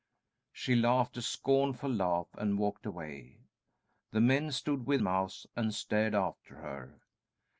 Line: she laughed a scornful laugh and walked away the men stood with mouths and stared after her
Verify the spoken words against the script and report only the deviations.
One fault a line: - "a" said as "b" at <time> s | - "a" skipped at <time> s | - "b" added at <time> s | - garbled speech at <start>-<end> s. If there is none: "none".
none